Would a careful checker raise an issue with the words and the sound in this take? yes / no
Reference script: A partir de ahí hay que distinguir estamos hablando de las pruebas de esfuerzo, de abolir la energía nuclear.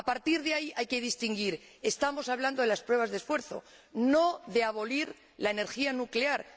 yes